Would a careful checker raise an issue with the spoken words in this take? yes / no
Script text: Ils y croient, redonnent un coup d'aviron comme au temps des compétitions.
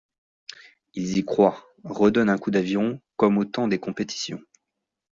no